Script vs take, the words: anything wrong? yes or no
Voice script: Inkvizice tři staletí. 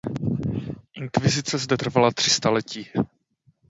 yes